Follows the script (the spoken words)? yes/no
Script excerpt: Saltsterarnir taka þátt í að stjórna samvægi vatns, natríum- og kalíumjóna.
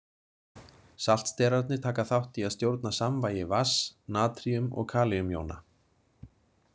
yes